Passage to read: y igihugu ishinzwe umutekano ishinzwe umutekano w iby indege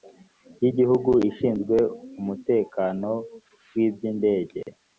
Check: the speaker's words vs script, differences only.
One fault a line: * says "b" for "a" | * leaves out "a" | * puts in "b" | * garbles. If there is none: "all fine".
* leaves out "ishinzwe umutekano"